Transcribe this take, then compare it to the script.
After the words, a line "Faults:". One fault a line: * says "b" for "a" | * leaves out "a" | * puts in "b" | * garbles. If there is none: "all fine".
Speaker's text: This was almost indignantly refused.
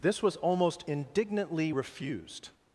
This was almost indignantly refused.
Faults:
all fine